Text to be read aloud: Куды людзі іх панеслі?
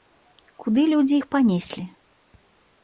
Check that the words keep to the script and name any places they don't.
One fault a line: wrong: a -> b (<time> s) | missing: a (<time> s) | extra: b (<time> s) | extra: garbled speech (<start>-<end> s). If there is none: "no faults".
no faults